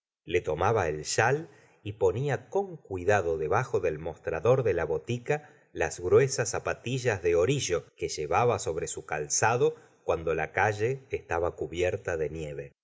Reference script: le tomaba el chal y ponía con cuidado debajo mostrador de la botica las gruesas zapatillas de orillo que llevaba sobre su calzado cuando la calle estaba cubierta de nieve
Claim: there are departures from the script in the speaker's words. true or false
true